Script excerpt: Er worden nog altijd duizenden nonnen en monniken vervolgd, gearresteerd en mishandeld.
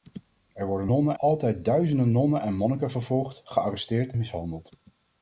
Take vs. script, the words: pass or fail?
fail